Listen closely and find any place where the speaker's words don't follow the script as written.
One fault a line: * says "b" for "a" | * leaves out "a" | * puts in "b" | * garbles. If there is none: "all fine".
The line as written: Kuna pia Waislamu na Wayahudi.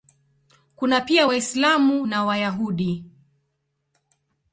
all fine